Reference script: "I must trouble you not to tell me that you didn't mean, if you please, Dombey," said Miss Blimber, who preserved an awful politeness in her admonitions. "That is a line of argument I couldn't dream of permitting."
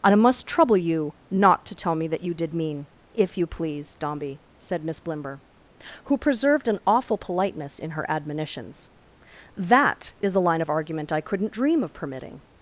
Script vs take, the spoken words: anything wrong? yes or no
yes